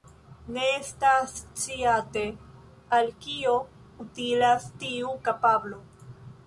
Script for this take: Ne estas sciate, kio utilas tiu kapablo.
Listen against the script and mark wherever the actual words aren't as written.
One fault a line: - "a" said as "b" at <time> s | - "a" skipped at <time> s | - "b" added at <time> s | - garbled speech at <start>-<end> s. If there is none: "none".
- "al" added at 3.0 s